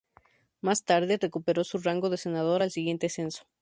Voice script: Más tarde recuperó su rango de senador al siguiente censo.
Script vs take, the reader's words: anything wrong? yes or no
no